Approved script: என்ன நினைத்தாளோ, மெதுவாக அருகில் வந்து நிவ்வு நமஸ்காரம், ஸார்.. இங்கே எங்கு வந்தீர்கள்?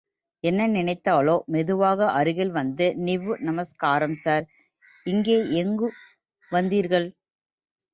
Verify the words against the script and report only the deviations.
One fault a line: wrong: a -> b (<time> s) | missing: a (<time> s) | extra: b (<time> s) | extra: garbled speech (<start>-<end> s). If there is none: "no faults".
no faults